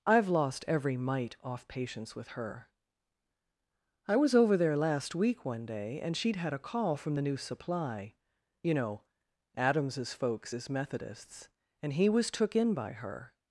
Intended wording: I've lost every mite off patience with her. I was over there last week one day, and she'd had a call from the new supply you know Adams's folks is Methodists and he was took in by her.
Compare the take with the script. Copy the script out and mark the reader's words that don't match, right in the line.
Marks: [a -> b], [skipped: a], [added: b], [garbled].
I've lost every mite off patience with her. I was over there last week one day, and she'd had a call from the new supply you know Adams's folks is Methodists and he was took in by her.